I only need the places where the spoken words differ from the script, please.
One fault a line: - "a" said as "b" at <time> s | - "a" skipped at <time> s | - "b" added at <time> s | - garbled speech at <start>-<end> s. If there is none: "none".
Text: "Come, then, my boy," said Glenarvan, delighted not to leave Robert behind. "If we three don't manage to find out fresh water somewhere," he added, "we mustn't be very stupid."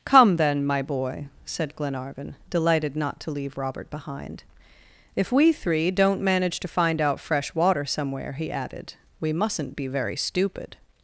none